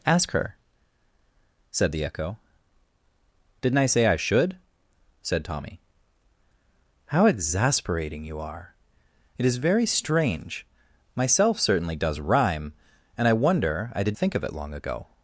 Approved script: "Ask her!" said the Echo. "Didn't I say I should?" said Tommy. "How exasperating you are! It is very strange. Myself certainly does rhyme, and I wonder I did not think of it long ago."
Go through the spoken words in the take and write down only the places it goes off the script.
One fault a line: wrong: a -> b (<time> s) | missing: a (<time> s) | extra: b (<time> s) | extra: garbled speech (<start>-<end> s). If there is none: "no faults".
missing: not (14.2 s)